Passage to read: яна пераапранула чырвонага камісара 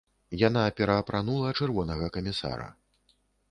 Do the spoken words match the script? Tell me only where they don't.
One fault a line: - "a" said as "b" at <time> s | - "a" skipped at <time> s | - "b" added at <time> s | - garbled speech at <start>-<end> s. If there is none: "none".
none